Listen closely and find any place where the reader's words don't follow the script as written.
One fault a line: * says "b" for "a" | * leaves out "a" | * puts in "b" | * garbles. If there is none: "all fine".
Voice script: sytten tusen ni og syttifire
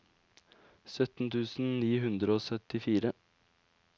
* puts in "hundre"